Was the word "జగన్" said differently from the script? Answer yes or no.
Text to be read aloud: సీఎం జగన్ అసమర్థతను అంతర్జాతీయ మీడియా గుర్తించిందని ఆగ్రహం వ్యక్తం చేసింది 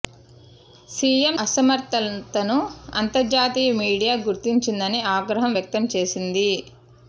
yes